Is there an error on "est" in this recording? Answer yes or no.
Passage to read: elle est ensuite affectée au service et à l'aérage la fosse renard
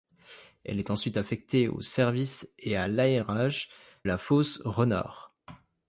no